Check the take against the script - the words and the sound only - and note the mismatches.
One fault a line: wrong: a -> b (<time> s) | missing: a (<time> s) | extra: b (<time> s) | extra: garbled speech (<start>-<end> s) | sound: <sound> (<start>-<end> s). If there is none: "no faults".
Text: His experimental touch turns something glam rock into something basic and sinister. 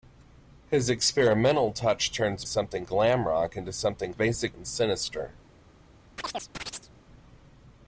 sound: chirp (6.2-6.9 s)